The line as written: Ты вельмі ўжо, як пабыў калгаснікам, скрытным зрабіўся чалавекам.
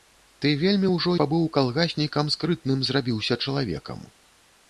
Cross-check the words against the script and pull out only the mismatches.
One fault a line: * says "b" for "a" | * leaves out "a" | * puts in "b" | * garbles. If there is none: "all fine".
* leaves out "як"